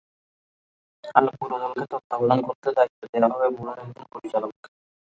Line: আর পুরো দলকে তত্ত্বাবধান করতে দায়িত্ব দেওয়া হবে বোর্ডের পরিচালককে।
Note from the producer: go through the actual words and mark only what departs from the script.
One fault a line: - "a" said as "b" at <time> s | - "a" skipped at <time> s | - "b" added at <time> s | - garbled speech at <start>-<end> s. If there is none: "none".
- "একজন" added at 3.8 s